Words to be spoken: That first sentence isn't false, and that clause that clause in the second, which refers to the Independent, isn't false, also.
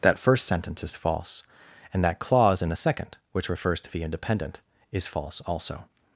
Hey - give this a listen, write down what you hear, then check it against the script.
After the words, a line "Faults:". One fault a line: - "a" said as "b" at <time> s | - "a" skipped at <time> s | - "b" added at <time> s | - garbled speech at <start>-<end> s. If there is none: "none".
That first sentence is false, and that clause in the second, which refers to the Independent, is false, also.
Faults:
- "isn't" said as "is" at 0.8 s
- "that clause" skipped at 2.6 s
- "isn't" said as "is" at 4.9 s